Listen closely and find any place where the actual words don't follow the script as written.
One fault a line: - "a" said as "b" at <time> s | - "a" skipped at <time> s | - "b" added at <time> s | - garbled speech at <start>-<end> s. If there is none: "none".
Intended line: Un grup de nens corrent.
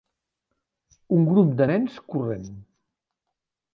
none